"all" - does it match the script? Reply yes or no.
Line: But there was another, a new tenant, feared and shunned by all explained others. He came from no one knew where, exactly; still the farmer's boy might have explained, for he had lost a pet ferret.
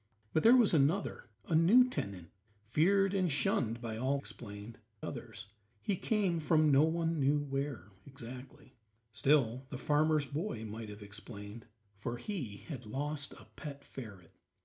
yes